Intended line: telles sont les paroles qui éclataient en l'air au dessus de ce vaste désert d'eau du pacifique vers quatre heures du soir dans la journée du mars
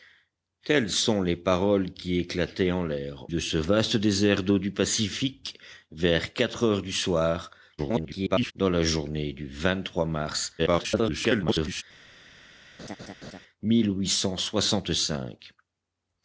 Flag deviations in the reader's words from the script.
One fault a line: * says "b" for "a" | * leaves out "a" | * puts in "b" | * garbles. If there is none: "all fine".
* leaves out "au dessus"
* garbles
* garbles